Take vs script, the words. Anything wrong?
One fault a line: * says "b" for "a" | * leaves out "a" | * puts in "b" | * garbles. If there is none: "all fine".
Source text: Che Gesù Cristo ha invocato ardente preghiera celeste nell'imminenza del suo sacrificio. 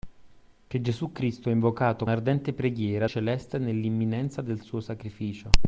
all fine